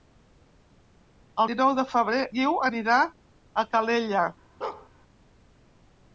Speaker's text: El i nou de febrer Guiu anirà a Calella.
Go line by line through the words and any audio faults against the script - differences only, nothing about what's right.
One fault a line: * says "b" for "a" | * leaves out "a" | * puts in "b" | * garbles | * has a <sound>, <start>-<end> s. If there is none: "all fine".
* has a bark, 4.6-4.9 s